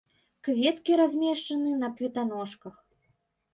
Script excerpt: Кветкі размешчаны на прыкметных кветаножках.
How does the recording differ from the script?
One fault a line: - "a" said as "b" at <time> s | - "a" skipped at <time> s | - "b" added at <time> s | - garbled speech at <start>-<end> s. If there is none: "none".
- "прыкметных" skipped at 1.9 s